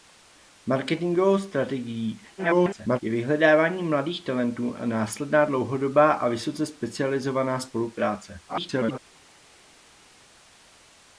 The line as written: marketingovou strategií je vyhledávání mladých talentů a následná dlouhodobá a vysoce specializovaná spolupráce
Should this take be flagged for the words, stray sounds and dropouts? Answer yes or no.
yes